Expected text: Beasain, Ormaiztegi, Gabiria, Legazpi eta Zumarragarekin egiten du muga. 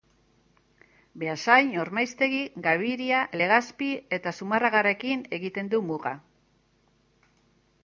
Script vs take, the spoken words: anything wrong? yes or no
no